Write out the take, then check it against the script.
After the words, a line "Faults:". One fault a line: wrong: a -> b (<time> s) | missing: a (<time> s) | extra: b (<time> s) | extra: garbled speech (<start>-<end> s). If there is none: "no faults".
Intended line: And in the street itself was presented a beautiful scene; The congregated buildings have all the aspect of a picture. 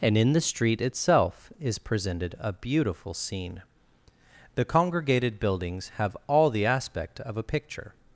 And in the street itself is presented a beautiful scene; The congregated buildings have all the aspect of a picture.
Faults:
wrong: was -> is (1.6 s)